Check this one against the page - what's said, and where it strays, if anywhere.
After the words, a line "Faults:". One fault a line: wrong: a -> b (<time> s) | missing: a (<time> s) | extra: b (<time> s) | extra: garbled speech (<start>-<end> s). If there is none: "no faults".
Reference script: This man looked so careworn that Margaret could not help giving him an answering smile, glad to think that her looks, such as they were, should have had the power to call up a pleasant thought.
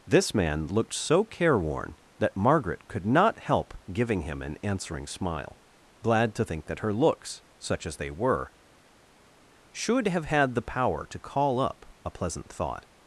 This man looked so careworn that Margaret could not help giving him an answering smile, glad to think that her looks, such as they were, should have had the power to call up a pleasant thought.
Faults:
no faults